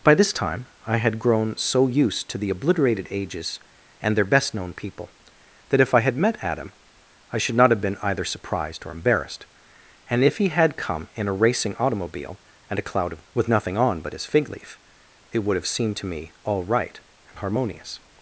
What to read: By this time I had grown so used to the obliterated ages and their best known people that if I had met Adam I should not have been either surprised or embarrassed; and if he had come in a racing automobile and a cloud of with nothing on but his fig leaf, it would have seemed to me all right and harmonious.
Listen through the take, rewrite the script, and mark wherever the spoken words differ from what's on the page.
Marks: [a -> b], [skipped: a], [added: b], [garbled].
By this time I had grown so used to the obliterated ages and their best known people that if I had met Adam I should not have been either surprised or embarrassed; and if he had come in a racing automobile and a cloud of with nothing on but his fig leaf, it would have seemed to me all right and harmonious.